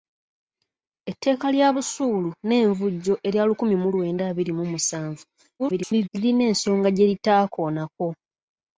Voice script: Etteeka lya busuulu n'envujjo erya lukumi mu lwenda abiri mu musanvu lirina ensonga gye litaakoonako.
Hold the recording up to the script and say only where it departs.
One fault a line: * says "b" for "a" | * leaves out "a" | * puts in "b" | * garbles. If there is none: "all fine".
* garbles